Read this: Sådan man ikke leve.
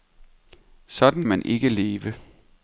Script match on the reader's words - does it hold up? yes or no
yes